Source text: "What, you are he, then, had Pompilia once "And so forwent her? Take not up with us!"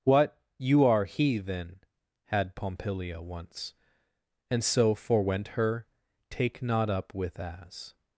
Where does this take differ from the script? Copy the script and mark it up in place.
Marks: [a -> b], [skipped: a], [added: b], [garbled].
"What, you are he, then, had Pompilia once "And so forwent her? Take not up with [us!" -> as]